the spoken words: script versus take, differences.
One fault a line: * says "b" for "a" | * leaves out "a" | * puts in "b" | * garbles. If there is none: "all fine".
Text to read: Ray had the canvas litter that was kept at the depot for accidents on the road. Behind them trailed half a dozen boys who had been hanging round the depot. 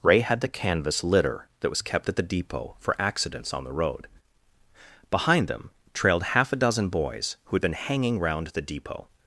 all fine